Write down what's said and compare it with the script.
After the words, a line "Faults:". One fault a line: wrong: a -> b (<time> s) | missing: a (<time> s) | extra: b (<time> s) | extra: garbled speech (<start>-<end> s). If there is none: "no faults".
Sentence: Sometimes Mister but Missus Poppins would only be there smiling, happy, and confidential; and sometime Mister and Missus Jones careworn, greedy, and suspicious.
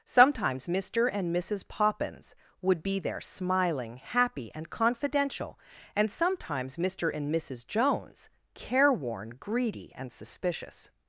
Sometimes Mister and Missus Poppins would be there smiling, happy, and confidential; and sometimes Mister and Missus Jones careworn, greedy, and suspicious.
Faults:
wrong: but -> and (1.1 s)
missing: only (2.8 s)
wrong: sometime -> sometimes (6.1 s)